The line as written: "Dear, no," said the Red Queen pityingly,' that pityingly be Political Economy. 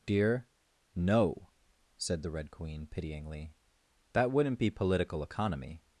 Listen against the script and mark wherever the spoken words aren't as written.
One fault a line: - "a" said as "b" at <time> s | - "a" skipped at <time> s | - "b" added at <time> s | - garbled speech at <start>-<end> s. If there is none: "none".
- "pityingly" said as "wouldn't" at 4.3 s